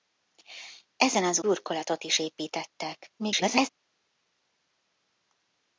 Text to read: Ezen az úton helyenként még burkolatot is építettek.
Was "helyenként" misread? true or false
true